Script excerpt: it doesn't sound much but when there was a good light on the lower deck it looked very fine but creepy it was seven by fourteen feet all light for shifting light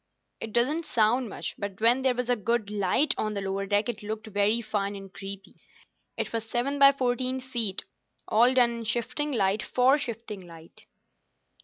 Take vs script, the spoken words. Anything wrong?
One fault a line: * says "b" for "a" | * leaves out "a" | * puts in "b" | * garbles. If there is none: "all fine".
* says "and" for "but"
* puts in "done in shifting"